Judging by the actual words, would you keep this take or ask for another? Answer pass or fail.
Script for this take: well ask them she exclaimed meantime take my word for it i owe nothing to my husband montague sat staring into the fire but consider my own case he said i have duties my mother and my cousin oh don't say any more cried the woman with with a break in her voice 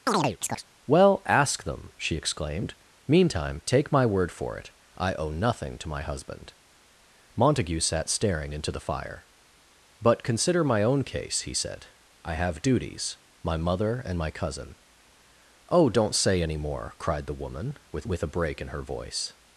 pass